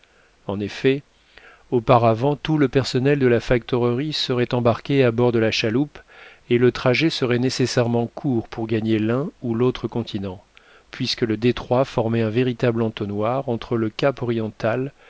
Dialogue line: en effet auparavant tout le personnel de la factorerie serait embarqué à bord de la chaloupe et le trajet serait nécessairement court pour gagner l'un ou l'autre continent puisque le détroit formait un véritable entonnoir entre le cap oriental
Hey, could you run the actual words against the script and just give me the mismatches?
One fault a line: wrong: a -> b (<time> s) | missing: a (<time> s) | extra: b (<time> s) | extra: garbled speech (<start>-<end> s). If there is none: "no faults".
no faults